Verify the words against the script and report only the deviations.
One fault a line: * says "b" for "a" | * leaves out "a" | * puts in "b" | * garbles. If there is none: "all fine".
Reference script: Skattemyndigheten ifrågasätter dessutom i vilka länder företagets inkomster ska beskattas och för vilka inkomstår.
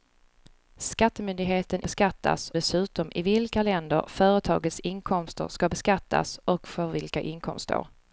* says "beskattas" for "ifrågasätter"